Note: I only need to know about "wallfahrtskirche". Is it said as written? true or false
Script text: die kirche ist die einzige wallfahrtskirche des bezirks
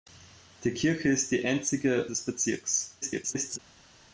false